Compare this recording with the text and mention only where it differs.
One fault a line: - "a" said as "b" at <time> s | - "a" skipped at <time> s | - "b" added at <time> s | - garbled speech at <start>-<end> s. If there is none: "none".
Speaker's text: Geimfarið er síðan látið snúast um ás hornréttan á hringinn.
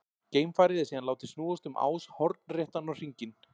none